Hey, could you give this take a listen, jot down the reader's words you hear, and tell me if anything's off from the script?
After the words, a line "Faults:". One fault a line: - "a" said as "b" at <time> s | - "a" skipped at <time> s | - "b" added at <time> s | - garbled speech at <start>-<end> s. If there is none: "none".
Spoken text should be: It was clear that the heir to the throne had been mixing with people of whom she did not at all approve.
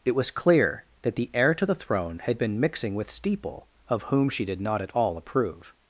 It was clear that the heir to the throne had been mixing with steeple of whom she did not at all approve.
Faults:
- "people" said as "steeple" at 3.1 s